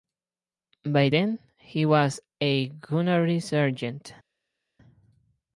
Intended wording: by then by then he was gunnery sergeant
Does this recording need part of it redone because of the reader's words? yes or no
yes